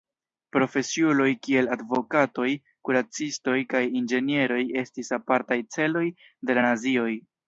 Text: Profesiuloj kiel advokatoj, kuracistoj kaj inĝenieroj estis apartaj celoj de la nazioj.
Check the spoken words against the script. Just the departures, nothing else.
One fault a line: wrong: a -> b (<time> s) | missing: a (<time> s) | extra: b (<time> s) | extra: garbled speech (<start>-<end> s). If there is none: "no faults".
no faults